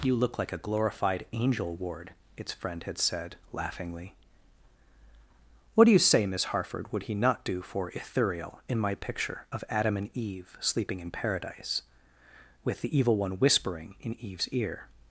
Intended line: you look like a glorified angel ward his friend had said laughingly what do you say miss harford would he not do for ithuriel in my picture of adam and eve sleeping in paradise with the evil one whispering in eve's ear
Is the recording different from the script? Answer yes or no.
yes